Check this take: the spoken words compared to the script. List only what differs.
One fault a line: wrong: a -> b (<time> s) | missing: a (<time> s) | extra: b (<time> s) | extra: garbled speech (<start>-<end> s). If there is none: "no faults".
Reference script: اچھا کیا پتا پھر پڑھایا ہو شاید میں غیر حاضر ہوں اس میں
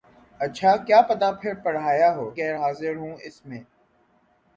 missing: شاید میں (2.2 s)